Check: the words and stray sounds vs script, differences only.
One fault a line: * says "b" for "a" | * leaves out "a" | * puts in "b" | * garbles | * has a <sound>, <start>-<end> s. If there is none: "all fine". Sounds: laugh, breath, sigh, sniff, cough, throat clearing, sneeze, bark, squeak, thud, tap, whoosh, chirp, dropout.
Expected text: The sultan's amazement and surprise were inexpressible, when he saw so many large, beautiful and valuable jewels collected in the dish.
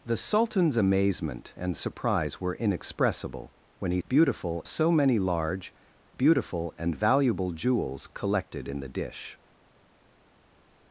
* says "beautiful" for "saw"